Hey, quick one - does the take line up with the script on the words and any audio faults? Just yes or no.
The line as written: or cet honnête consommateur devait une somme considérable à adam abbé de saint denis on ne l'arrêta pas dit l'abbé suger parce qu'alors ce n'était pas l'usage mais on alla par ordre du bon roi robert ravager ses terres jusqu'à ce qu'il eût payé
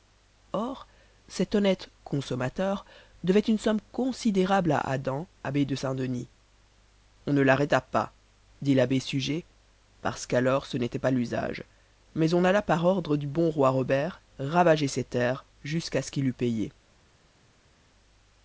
yes